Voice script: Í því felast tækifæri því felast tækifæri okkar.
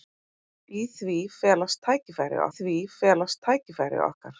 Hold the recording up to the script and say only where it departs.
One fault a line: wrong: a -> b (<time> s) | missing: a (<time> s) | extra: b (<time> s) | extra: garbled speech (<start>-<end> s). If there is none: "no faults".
no faults